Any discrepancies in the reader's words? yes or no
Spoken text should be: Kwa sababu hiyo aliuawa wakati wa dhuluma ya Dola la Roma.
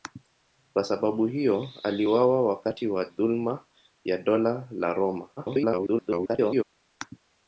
yes